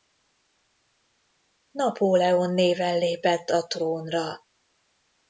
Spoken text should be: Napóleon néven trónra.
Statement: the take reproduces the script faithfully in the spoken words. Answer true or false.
false